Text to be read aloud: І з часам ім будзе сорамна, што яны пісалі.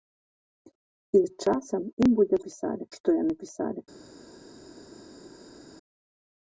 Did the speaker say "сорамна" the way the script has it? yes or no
no